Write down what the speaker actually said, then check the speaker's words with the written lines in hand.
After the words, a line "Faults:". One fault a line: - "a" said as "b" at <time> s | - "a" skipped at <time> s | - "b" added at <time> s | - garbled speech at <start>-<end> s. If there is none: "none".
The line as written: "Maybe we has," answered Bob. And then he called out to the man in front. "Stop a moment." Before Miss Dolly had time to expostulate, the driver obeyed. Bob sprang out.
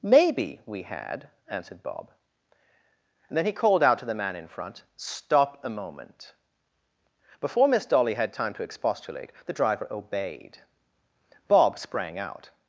"Maybe we had," answered Bob. And then he called out to the man in front. "Stop a moment." Before Miss Dolly had time to expostulate, the driver obeyed. Bob sprang out.
Faults:
- "has" said as "had" at 0.8 s